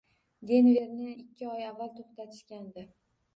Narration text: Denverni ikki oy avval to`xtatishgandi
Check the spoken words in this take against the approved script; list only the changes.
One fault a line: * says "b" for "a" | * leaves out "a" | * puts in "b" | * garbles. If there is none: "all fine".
all fine